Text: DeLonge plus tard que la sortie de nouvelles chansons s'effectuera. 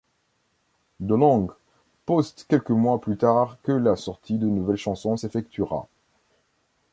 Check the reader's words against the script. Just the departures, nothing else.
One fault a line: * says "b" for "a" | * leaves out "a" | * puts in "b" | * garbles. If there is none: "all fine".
* puts in "poste quelques mois"